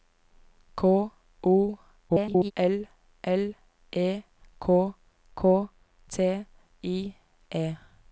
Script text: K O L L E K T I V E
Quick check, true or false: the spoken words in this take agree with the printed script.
false